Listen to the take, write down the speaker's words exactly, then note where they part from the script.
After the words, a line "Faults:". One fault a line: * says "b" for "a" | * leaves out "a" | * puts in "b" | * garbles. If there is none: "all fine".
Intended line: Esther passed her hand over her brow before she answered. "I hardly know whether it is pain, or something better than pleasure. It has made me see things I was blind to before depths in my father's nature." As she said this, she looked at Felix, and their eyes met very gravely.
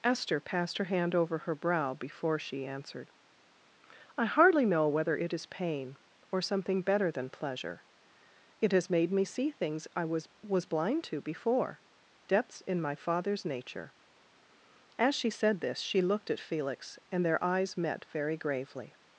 Esther passed her hand over her brow before she answered. "I hardly know whether it is pain, or something better than pleasure. It has made me see things I was was blind to before depths in my father's nature." As she said this, she looked at Felix, and their eyes met very gravely.
Faults:
* puts in "was"